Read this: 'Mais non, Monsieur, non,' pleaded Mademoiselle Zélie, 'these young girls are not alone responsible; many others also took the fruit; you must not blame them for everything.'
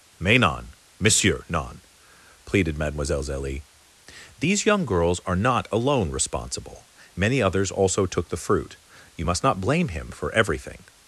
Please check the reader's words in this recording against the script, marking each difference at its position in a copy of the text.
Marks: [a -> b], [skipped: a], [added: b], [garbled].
'Mais non, Monsieur, non,' pleaded Mademoiselle Zélie, 'these young girls are not alone responsible; many others also took the fruit; you must not blame [them -> him] for everything.'